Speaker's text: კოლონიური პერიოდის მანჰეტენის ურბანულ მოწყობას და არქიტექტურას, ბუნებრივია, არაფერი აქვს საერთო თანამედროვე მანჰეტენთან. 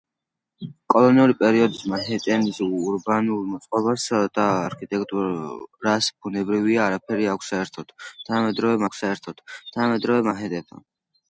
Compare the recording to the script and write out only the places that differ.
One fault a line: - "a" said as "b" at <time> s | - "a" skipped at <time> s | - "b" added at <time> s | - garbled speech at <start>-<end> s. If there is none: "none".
- "აქვს საერთო თანამედროვე" added at 8.9 s